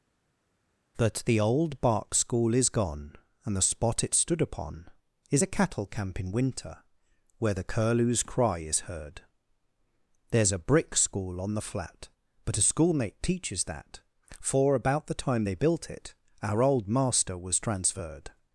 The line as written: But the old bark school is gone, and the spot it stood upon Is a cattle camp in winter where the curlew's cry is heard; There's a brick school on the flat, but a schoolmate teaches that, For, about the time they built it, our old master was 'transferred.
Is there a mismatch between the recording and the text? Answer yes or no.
yes